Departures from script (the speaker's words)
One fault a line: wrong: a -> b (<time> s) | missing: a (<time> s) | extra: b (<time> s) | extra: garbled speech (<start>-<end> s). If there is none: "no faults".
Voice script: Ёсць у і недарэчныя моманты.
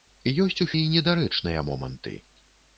no faults